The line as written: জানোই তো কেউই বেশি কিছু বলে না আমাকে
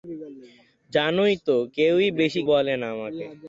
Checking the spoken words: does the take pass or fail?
fail